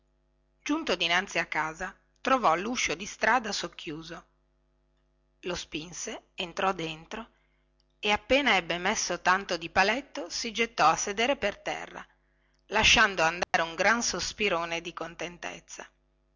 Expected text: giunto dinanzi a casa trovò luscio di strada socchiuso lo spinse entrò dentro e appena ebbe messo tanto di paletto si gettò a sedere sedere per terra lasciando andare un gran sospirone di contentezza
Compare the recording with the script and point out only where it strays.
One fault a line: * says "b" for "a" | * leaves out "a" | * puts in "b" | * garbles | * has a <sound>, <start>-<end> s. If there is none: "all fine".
* leaves out "sedere"
* has a dropout, 13.4-13.5 s